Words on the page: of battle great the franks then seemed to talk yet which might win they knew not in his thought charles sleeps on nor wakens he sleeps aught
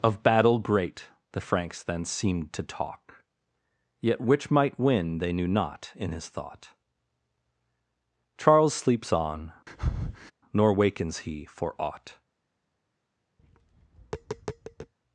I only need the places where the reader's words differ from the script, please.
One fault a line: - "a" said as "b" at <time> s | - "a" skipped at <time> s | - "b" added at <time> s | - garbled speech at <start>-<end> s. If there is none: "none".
- "sleeps" said as "for" at 11.4 s